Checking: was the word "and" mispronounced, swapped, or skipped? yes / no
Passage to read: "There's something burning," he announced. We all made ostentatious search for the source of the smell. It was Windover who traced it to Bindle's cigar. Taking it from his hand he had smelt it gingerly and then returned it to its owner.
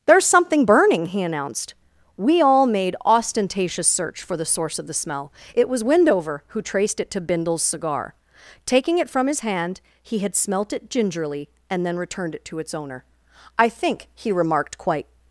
no